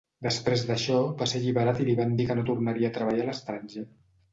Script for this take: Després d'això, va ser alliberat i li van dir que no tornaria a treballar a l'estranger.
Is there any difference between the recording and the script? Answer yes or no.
no